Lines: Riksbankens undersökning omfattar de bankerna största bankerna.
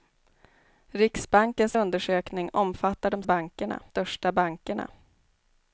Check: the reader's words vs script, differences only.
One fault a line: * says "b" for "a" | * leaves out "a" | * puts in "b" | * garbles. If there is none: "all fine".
all fine